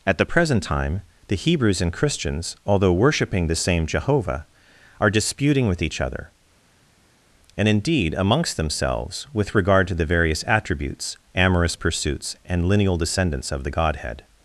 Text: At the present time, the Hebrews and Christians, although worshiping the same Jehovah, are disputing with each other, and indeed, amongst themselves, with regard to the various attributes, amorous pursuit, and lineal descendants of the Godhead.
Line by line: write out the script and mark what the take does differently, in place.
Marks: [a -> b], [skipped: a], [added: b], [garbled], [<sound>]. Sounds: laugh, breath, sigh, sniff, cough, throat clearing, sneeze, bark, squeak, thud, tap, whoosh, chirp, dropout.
At the present time, the Hebrews and Christians, although worshiping the same Jehovah, are disputing with each other, and indeed, amongst themselves, with regard to the various attributes, amorous [pursuit, -> pursuits] and lineal descendants of the Godhead.